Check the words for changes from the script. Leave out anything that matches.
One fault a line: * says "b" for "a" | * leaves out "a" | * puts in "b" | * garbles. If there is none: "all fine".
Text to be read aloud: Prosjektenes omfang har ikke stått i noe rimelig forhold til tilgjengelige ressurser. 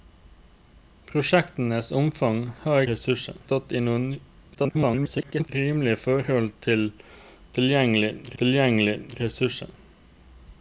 * says "ressurser" for "ikke"
* garbles
* puts in "tilgjengelige"